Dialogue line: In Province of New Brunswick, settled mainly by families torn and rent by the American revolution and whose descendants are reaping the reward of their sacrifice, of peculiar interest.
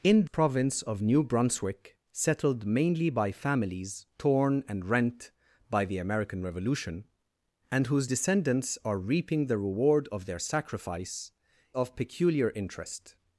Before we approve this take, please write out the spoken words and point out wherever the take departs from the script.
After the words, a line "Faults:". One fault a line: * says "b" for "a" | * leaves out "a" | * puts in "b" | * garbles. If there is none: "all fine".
In Province of New Brunswick, settled mainly by families torn and rent by the American revolution and whose descendants are reaping the reward of their sacrifice, of peculiar interest.
Faults:
all fine